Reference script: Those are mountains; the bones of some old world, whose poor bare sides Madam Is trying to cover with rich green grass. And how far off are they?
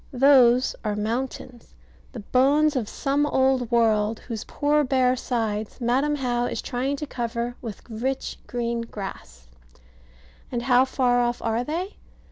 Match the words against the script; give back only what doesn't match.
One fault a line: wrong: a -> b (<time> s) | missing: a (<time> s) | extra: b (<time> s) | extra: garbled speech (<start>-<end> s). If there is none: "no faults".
extra: How (6.1 s)